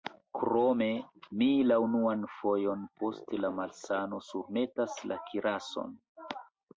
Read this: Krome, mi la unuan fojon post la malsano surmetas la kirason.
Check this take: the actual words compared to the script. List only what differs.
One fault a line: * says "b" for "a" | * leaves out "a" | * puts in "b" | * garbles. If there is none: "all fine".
all fine